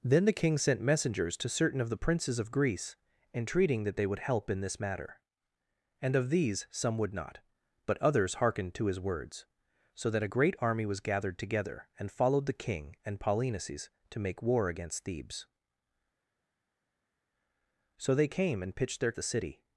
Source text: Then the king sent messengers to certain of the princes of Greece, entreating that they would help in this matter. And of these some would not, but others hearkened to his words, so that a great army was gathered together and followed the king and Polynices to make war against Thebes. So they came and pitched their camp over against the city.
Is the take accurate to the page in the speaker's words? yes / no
no